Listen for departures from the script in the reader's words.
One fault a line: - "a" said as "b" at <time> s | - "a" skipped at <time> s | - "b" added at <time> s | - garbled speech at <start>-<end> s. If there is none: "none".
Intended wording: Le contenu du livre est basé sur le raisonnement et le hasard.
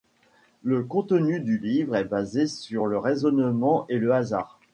none